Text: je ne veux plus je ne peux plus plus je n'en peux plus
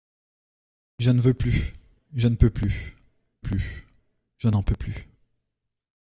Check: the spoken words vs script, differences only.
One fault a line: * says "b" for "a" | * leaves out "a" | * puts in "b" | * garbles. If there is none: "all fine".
all fine